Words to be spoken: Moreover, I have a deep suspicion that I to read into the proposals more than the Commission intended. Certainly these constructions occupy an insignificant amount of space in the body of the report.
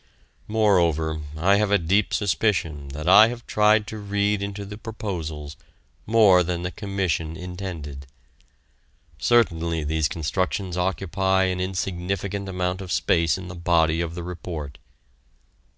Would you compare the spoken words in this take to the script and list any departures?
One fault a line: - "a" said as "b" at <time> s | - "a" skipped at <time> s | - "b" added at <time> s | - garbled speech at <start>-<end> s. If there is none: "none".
- "have tried" added at 3.3 s